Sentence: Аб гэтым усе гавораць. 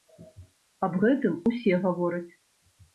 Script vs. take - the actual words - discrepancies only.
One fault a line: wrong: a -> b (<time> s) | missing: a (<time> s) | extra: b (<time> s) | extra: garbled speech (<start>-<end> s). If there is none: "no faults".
no faults